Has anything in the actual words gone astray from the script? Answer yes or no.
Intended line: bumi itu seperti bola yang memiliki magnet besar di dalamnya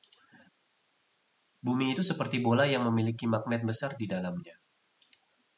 no